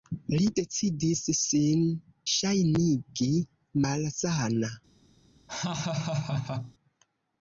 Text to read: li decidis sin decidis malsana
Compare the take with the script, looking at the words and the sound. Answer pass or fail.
fail